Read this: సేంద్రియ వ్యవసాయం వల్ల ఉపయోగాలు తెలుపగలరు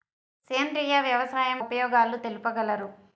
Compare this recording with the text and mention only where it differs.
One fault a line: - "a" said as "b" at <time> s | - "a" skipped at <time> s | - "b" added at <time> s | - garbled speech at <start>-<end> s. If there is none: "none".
- "వల్ల" skipped at 1.6 s